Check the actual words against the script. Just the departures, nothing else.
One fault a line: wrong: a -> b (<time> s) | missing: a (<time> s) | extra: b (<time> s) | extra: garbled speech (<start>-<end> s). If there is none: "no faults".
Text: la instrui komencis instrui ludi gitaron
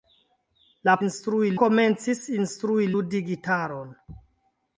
no faults